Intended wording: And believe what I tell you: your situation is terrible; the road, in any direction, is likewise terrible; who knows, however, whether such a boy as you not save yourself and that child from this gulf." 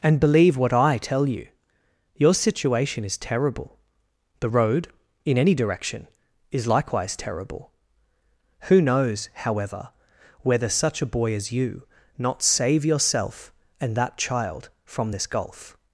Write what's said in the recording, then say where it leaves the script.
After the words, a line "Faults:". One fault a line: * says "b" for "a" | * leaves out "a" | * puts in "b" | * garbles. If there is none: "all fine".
And believe what I tell you: your situation is terrible; the road, in any direction, is likewise terrible; who knows, however, whether such a boy as you not save yourself and that child from this gulf."
Faults:
all fine